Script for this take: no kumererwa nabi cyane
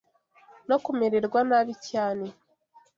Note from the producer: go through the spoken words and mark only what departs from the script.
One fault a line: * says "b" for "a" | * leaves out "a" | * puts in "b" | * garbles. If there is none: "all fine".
all fine